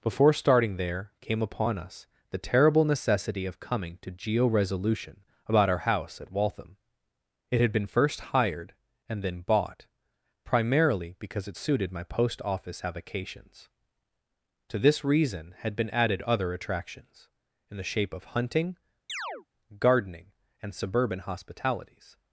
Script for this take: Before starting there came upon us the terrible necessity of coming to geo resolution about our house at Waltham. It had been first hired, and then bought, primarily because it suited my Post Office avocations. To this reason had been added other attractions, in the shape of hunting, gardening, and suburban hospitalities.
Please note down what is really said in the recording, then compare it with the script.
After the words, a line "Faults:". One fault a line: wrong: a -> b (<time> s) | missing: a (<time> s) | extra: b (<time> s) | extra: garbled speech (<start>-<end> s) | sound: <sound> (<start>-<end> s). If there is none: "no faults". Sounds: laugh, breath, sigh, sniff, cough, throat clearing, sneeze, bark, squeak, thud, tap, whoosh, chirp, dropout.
Before starting there came upon us the terrible necessity of coming to geo resolution about our house at Waltham. It had been first hired, and then bought, primarily because it suited my Post Office avocations. To this reason had been added other attractions, in the shape of hunting, gardening, and suburban hospitalities.
Faults:
sound: chirp (19.1-19.5 s)